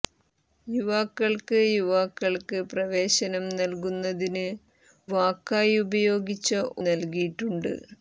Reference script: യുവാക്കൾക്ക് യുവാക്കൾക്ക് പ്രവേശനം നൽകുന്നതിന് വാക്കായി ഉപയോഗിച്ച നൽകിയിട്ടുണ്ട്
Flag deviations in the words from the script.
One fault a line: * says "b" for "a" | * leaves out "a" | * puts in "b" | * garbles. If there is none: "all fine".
all fine